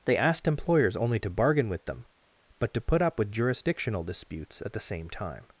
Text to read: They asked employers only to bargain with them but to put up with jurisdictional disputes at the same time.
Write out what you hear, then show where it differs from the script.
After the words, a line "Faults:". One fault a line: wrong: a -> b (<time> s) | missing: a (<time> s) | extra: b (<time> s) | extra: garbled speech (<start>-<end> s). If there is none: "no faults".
They asked employers only to bargain with them but to put up with jurisdictional disputes at the same time.
Faults:
no faults